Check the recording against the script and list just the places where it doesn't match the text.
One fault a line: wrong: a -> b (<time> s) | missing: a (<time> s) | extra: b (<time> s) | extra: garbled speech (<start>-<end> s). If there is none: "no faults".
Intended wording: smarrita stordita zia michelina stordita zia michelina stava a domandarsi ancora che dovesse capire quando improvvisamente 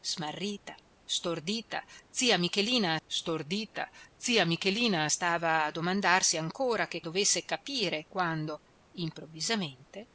no faults